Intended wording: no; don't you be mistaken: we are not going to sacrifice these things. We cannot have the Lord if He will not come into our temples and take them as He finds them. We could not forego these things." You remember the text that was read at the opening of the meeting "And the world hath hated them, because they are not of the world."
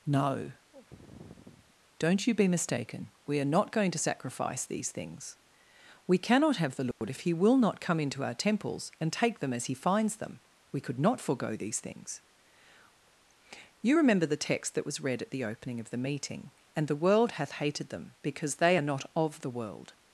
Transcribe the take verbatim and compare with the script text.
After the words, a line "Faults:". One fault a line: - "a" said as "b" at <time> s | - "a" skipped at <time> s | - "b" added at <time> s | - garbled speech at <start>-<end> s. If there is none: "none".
no; don't you be mistaken: we are not going to sacrifice these things. We cannot have the Lord if He will not come into our temples and take them as He finds them. We could not forego these things." You remember the text that was read at the opening of the meeting "And the world hath hated them, because they are not of the world."
Faults:
none